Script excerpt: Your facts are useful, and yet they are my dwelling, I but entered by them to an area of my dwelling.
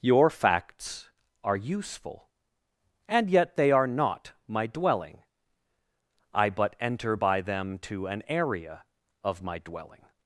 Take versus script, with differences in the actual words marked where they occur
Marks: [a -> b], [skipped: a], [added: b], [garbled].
Your facts are useful, and yet they are [added: not] my dwelling, I but [entered -> enter] by them to an area of my dwelling.